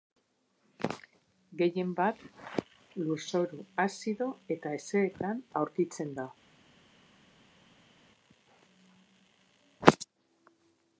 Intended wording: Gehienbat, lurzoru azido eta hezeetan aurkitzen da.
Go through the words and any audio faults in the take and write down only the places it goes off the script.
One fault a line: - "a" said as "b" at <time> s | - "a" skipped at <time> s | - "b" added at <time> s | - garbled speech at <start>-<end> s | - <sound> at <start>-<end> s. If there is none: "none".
none